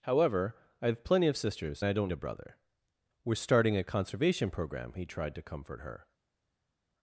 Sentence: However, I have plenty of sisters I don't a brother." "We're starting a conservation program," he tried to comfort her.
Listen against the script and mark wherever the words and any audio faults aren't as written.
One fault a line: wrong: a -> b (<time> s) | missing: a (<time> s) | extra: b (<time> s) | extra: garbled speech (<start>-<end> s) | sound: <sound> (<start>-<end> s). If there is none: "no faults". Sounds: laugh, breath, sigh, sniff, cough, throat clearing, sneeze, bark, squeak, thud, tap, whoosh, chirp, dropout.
no faults